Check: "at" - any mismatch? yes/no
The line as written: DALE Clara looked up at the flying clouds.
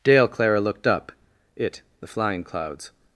yes